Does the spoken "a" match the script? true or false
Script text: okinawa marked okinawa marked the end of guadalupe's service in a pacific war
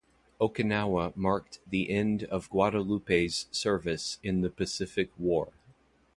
false